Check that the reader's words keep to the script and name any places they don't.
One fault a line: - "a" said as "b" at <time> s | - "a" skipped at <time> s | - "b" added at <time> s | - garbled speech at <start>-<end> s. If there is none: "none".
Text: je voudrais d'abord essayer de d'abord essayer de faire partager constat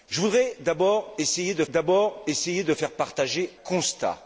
none